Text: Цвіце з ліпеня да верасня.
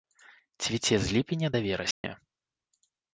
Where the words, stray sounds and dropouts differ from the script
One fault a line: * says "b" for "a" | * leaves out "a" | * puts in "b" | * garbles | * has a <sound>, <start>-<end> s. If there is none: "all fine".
* has a dropout, 1.9-2.0 s